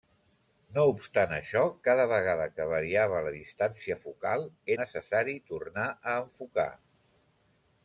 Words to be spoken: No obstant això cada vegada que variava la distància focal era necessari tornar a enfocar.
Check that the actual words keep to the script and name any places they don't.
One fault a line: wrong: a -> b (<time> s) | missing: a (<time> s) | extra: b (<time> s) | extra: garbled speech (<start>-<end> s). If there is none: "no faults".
missing: era (4.5 s)